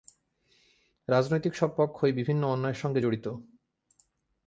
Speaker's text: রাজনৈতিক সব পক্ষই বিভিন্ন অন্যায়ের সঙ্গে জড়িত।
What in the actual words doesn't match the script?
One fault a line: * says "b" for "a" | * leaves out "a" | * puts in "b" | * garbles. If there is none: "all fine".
all fine